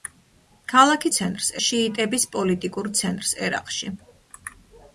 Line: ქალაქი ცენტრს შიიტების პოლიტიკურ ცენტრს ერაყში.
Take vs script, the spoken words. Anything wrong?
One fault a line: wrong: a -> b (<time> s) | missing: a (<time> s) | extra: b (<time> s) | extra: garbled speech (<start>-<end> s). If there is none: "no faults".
no faults